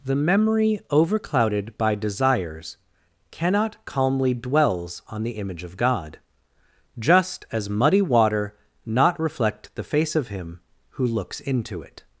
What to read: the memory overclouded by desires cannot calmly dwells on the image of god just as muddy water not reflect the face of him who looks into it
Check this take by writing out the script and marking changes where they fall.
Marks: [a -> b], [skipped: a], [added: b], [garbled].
the memory overclouded by desires cannot calmly dwells on the image of god just as muddy water not reflect the face of him who looks into it